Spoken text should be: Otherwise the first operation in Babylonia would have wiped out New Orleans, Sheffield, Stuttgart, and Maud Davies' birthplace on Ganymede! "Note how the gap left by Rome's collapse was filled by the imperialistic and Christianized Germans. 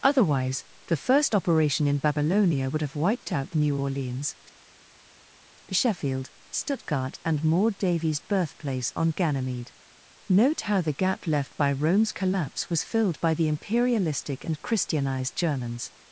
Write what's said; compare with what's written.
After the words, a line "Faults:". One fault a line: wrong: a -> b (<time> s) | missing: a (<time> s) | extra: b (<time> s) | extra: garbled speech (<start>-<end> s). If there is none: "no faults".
Otherwise the first operation in Babylonia would have wiped out New Orleans, Sheffield, Stuttgart, and Maud Davies' birthplace on Ganymede! "Note how the gap left by Rome's collapse was filled by the imperialistic and Christianized Germans.
Faults:
no faults